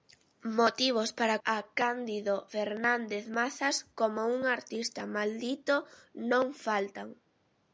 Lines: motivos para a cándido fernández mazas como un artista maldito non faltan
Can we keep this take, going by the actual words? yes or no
yes